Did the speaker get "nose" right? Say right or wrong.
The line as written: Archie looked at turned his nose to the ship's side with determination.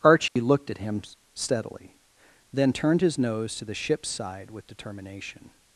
right